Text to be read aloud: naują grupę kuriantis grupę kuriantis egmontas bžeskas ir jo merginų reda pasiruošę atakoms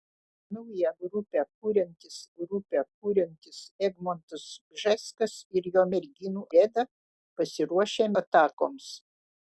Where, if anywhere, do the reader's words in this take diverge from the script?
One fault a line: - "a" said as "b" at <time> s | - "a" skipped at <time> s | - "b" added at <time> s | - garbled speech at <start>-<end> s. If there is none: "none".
none